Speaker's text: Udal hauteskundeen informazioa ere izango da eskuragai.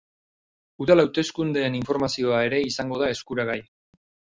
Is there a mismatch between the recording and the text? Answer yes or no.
no